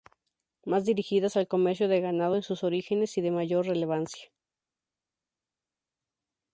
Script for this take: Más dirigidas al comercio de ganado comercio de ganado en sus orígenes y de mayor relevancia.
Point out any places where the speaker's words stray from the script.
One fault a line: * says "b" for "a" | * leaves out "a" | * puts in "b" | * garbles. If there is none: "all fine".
* leaves out "comercio de ganado"